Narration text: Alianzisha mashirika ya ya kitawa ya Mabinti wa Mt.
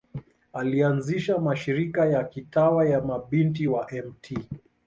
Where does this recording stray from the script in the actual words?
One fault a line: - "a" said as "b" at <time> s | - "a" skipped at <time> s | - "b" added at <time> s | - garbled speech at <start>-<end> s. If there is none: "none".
- "ya" skipped at 2.2 s